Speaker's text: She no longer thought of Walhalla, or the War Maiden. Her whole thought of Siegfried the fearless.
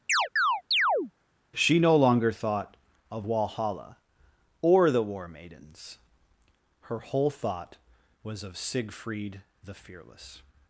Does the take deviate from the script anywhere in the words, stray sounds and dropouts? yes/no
yes